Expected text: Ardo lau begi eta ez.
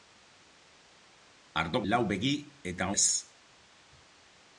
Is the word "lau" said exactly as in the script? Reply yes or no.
yes